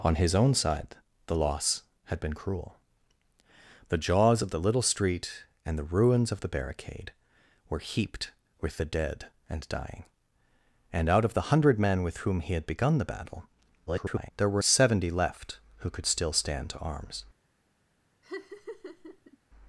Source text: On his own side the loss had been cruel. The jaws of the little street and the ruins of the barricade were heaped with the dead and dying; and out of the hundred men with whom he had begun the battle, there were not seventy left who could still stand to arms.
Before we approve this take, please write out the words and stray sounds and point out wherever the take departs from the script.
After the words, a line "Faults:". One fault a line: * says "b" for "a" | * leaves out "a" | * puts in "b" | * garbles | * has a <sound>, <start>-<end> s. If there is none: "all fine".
On his own side the loss had been cruel. The jaws of the little street and the ruins of the barricade were heaped with the dead and dying; and out of the hundred men with whom he had begun the battle, [garbled] there were seventy left who could still stand to arms.
Faults:
* garbles
* leaves out "not"
* has a laugh, 18.2-19.4 s